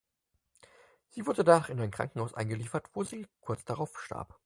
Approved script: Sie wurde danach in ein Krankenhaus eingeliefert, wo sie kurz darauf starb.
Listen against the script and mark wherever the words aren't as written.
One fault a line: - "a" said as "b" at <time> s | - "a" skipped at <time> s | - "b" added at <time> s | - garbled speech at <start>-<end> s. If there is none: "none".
none